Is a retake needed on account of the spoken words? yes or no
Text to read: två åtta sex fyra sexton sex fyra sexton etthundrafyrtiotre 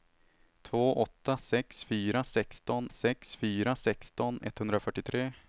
no